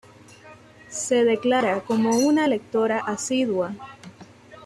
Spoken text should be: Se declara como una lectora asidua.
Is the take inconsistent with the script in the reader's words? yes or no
no